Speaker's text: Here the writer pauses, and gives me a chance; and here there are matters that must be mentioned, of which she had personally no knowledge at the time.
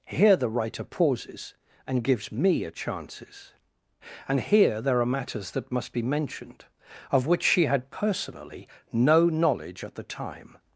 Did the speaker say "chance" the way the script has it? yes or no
no